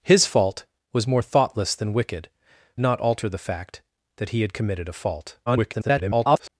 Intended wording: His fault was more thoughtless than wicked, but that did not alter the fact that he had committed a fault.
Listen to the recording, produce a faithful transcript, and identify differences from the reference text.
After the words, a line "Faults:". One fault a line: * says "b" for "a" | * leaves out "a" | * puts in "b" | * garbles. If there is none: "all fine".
His fault was more thoughtless than wicked, not alter the fact that he had committed a fault. [garbled]
Faults:
* leaves out "but that did"
* garbles